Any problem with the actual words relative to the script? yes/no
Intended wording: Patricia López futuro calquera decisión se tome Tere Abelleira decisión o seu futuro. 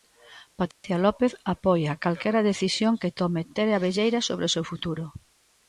yes